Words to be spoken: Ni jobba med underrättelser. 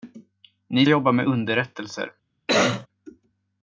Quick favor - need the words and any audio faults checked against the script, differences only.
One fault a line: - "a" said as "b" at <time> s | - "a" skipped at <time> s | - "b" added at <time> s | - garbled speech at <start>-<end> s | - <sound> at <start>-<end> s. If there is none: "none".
- cough at 2.5-2.9 s